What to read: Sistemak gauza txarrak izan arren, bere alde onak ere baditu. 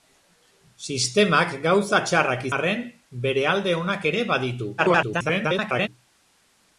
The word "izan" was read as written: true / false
false